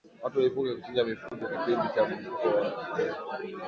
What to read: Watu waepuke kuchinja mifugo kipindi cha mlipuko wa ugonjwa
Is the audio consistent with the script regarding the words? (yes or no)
yes